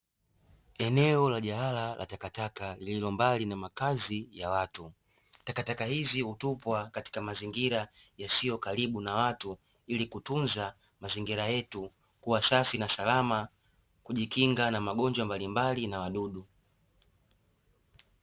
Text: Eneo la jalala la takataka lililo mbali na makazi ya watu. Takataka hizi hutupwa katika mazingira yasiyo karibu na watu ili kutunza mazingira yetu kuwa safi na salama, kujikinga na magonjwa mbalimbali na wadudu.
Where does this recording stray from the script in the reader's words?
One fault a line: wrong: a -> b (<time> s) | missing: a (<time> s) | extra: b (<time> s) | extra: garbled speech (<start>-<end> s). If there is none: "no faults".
no faults